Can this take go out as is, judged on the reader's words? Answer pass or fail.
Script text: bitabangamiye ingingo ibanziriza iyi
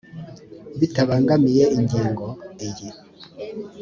fail